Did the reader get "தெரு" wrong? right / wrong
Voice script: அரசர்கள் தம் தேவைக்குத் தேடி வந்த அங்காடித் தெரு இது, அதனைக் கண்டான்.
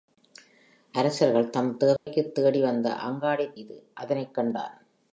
wrong